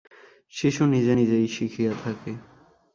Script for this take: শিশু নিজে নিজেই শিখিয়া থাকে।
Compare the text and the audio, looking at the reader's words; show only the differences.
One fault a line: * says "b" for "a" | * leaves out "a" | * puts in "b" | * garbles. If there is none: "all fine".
all fine